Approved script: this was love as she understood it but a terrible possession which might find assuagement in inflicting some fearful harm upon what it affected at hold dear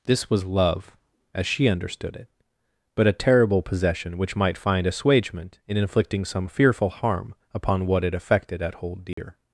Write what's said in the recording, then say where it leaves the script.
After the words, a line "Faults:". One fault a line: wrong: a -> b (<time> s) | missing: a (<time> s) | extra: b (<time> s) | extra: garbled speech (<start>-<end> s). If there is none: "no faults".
this was love as she understood it but a terrible possession which might find assuagement in inflicting some fearful harm upon what it affected at hold dear
Faults:
no faults